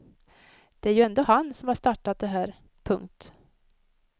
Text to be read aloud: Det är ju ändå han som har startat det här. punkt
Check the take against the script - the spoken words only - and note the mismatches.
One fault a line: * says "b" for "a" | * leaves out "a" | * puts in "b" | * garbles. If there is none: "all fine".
all fine